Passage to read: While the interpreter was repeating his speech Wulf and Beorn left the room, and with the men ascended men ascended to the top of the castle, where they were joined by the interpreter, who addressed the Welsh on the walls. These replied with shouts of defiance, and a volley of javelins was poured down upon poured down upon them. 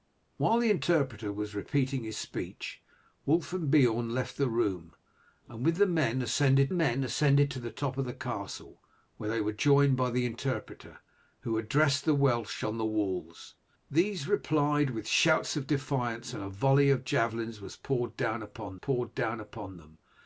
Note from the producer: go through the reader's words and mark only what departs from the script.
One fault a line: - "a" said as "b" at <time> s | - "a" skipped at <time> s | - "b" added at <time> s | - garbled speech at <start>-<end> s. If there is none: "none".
none